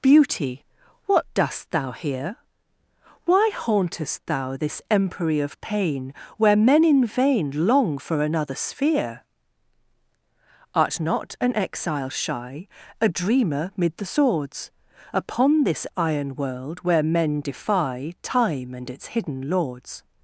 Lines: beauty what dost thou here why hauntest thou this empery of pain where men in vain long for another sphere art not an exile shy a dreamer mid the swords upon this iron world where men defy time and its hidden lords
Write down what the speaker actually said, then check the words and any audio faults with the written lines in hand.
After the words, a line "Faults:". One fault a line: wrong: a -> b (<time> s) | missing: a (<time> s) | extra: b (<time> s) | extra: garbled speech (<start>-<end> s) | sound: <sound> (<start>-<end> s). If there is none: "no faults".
beauty what dost thou here why hauntest thou this empery of pain where men in vain long for another sphere art not an exile shy a dreamer mid the swords upon this iron world where men defy time and its hidden lords
Faults:
no faults